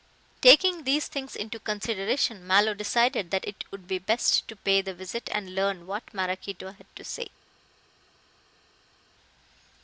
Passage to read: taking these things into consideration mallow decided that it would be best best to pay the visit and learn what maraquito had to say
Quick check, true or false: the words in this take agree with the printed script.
false